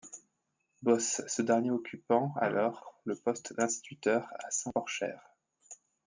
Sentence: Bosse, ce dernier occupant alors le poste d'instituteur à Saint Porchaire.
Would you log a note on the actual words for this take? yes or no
no